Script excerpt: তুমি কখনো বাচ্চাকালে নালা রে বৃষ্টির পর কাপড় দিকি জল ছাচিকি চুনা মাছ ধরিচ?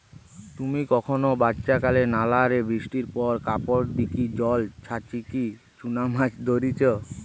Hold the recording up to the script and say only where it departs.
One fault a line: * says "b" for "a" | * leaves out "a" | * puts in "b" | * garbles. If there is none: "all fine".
all fine